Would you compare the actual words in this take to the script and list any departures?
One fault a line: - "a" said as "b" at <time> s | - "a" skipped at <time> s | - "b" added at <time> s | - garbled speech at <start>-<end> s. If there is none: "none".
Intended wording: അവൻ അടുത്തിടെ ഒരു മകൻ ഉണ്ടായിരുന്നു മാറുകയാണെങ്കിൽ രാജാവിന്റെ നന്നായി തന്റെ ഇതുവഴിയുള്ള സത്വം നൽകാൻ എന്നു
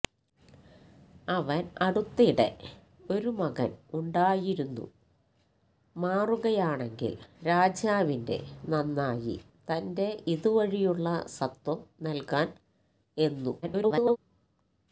- garbled speech at 13.6-14.2 s